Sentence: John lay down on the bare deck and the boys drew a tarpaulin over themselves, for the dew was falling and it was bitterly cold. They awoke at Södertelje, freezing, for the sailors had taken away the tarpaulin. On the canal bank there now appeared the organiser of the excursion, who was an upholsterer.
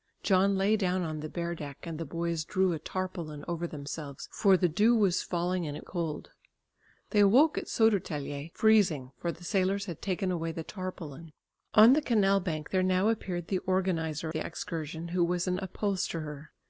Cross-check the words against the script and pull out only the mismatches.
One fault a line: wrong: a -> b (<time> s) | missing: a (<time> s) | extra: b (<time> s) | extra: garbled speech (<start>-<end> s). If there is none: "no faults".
missing: was bitterly (5.8 s)
missing: of (14.3 s)